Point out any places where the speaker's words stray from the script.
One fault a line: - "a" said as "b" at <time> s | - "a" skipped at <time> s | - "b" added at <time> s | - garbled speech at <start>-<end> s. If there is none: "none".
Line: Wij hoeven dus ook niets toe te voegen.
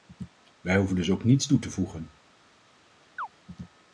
none